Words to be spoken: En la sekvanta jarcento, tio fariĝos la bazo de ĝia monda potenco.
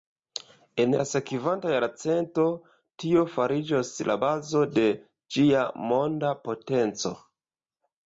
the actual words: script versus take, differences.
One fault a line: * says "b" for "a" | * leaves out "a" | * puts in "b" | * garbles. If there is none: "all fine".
all fine